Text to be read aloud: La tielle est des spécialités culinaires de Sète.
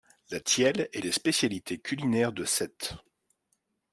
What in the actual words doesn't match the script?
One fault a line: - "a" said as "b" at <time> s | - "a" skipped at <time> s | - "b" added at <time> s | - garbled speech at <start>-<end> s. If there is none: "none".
none